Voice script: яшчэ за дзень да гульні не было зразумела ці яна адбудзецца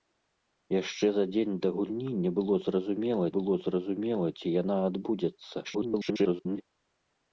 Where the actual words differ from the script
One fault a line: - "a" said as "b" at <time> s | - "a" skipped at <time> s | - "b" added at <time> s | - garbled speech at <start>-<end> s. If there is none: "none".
- "было зразумела" added at 3.3 s
- garbled speech at 5.6-6.6 s